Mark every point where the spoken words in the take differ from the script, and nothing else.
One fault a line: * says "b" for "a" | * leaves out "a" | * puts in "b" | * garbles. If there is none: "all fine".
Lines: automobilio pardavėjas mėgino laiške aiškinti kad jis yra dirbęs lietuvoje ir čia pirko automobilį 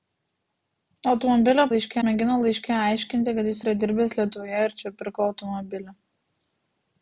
* says "laiške" for "pardavėjas"